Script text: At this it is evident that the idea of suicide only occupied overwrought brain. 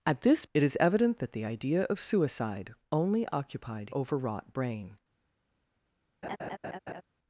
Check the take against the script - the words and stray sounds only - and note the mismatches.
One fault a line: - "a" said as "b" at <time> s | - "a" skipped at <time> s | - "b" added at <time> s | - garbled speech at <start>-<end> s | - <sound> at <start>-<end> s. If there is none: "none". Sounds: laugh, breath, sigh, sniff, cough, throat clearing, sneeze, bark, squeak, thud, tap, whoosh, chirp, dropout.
- laugh at 6.2-7.0 s